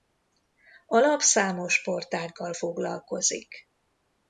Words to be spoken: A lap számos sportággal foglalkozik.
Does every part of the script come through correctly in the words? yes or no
yes